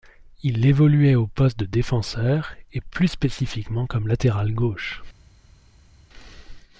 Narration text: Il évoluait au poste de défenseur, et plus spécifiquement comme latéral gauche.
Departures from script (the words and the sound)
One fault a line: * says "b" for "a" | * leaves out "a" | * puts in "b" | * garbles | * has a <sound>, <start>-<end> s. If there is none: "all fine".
all fine